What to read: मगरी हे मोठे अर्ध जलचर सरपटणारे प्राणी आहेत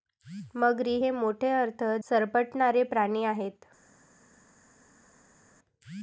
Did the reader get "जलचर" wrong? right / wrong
wrong